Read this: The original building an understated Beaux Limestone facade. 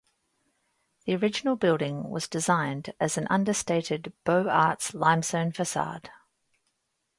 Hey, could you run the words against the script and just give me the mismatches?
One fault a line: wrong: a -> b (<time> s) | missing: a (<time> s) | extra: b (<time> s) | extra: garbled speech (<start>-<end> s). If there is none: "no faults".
extra: was designed as (2.1 s)
extra: Arts (4.5 s)